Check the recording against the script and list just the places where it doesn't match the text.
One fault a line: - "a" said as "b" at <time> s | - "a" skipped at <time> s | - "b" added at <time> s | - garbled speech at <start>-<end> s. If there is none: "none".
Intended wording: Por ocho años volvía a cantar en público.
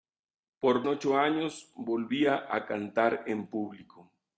none